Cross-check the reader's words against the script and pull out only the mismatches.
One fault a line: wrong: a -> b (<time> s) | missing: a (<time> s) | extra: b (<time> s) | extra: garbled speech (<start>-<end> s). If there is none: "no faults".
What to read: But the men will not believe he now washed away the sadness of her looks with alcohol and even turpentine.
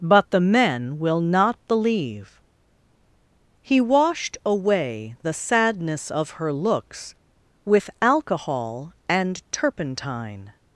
missing: now (3.8 s)
missing: even (9.4 s)